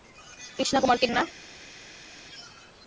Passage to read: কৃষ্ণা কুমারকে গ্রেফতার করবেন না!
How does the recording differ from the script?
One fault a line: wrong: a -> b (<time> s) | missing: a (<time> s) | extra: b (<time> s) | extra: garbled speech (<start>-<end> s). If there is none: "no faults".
missing: গ্রেফতার করবেন (1.1 s)